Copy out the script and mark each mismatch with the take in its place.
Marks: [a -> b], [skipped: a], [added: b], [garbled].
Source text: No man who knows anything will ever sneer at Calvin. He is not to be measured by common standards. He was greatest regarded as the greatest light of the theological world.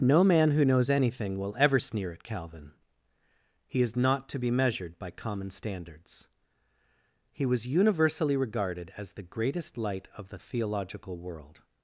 No man who knows anything will ever sneer at Calvin. He is not to be measured by common standards. He was [greatest -> universally] regarded as the greatest light of the theological world.